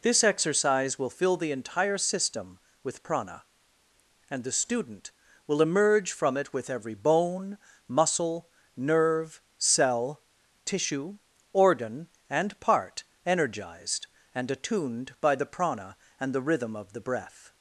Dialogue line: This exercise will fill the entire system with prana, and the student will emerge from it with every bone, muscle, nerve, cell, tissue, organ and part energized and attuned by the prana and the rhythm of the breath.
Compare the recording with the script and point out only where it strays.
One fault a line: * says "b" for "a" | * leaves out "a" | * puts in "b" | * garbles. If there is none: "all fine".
all fine